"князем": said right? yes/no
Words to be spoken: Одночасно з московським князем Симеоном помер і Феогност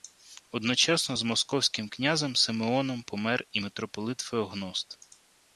yes